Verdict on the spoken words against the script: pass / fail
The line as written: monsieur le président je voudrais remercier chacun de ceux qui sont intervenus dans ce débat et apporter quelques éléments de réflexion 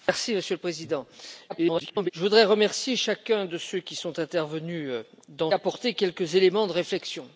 fail